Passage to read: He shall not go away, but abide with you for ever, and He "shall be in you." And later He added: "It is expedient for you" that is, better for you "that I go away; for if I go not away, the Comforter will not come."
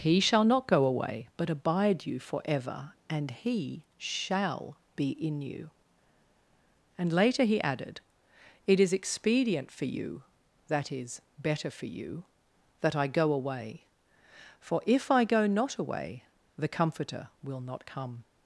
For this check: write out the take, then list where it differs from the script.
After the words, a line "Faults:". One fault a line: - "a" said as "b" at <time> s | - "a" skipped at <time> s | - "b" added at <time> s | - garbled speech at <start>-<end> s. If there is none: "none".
He shall not go away, but abide you for ever, and He "shall be in you." And later He added: "It is expedient for you" that is, better for you "that I go away; for if I go not away, the Comforter will not come."
Faults:
- "with" skipped at 2.1 s